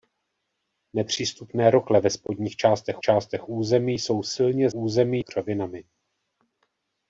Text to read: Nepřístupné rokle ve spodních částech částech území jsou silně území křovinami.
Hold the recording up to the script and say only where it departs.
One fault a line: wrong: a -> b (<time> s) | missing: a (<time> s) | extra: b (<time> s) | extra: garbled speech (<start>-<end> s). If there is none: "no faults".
no faults